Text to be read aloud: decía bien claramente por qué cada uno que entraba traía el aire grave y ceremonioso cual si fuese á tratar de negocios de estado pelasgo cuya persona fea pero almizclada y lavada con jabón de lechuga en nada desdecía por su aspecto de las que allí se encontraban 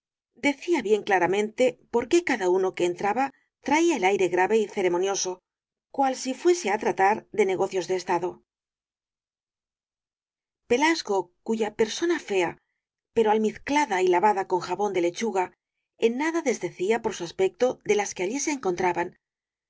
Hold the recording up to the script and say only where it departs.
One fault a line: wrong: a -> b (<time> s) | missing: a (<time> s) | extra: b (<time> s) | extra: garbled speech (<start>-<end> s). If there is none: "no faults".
no faults